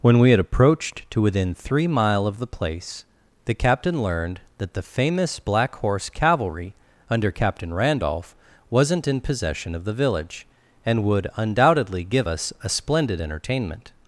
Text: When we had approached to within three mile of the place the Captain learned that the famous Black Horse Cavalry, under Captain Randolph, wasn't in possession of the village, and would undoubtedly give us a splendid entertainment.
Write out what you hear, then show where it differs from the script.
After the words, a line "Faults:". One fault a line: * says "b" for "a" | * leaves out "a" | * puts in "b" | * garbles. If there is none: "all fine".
When we had approached to within three mile of the place the Captain learned that the famous Black Horse Cavalry, under Captain Randolph, wasn't in possession of the village, and would undoubtedly give us a splendid entertainment.
Faults:
all fine